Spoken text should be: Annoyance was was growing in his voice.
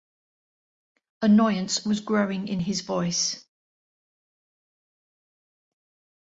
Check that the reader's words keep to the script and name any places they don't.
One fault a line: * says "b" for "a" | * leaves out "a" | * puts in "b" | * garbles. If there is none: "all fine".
* leaves out "was"